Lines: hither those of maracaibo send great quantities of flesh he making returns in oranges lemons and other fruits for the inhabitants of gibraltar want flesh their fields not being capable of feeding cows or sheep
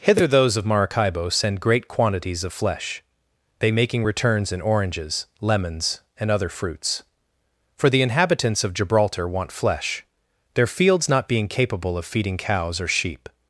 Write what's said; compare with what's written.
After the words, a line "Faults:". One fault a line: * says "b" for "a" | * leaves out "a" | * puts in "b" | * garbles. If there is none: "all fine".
hither those of maracaibo send great quantities of flesh they making returns in oranges lemons and other fruits for the inhabitants of gibraltar want flesh their fields not being capable of feeding cows or sheep
Faults:
* says "they" for "he"